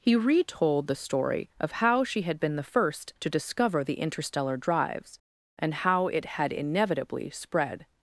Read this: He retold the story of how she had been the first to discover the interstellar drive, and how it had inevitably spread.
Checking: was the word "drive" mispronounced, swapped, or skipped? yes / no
yes